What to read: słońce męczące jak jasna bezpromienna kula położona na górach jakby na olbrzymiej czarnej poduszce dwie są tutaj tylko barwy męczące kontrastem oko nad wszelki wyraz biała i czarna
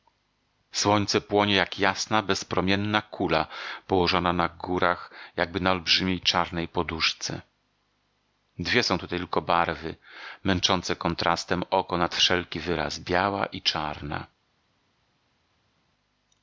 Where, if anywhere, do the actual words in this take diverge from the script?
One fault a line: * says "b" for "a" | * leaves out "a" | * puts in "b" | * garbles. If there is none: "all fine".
* says "płonie" for "męczące"